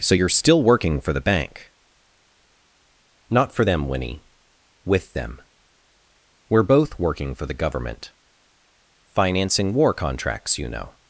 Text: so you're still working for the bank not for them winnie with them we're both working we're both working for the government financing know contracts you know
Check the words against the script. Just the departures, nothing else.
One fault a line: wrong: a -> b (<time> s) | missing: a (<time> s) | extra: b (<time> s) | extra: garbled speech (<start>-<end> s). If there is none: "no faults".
missing: we're both working (7.3 s)
wrong: know -> war (9.7 s)